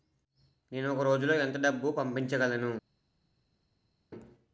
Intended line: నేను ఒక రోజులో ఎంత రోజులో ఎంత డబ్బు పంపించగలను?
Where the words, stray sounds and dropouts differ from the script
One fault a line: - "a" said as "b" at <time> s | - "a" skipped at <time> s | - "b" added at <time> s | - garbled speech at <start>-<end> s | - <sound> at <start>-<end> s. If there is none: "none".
- "రోజులో ఎంత" skipped at 1.6 s